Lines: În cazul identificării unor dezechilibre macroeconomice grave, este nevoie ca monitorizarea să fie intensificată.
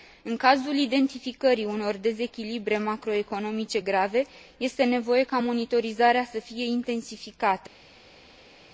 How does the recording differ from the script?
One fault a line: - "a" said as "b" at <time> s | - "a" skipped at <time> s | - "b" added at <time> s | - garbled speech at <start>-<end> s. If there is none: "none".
none